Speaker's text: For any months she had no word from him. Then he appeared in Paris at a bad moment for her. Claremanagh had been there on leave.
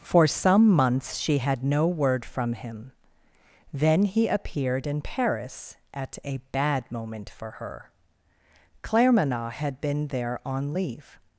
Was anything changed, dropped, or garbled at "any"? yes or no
yes